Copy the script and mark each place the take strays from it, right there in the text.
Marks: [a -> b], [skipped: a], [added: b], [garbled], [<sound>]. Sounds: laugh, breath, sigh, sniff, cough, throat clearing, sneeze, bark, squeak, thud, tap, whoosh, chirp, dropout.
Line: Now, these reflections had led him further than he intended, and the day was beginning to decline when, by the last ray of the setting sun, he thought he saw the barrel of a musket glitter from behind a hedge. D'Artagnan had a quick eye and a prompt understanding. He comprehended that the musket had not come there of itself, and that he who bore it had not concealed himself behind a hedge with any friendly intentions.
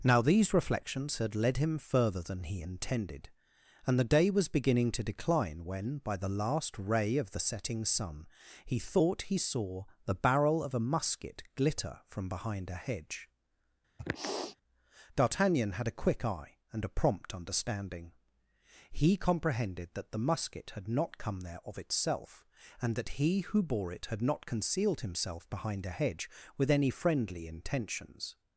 Now, these reflections had led him further than he intended, and the day was beginning to decline when, by the last ray of the setting sun, he thought he saw the barrel of a musket glitter from behind a hedge. [sniff] D'Artagnan had a quick eye and a prompt understanding. He comprehended that the musket had not come there of itself, and that he who bore it had not concealed himself behind a hedge with any friendly intentions.